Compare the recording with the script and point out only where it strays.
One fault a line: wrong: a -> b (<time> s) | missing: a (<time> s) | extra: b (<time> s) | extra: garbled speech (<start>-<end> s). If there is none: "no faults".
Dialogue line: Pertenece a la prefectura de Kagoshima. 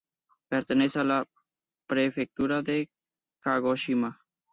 no faults